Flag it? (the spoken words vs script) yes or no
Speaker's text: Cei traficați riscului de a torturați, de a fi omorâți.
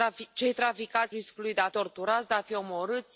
no